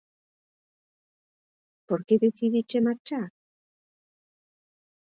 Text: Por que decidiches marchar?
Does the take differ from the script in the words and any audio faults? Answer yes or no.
no